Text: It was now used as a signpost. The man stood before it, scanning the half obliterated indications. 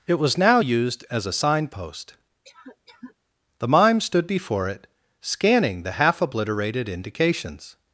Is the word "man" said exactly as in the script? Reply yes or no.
no